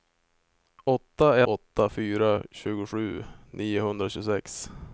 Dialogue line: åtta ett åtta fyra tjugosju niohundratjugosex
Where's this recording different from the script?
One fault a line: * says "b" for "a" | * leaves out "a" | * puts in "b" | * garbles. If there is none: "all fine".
* leaves out "ett"